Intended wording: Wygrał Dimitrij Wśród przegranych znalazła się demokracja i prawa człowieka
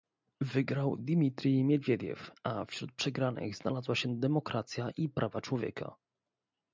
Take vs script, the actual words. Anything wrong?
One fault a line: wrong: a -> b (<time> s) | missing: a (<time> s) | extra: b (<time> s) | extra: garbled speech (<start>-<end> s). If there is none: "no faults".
extra: Miedwiediew a (1.6 s)